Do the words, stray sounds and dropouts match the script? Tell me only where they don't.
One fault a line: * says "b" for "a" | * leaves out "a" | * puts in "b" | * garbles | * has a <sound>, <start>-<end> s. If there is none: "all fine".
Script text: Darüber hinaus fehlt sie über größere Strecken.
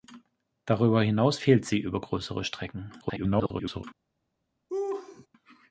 * garbles
* has a laugh, 4.7-5.3 s